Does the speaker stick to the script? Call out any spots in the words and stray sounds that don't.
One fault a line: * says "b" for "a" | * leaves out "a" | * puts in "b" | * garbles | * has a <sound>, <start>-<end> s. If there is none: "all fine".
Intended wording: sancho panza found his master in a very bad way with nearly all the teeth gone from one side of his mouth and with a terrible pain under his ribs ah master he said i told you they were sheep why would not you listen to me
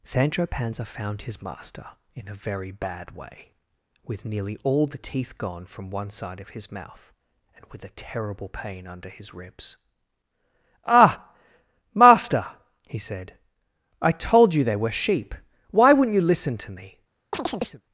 * has a chirp, 17.3-17.8 s